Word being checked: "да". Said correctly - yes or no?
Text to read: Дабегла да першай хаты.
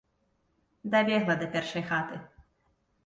yes